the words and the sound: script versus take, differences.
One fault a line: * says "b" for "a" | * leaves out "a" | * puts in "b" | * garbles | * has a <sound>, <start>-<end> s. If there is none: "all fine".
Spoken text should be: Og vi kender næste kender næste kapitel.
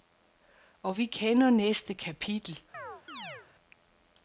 * leaves out "kender næste"
* has a chirp, 2.7-3.5 s